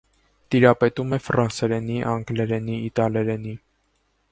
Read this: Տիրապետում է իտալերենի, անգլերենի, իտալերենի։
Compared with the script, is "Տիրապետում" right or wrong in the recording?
right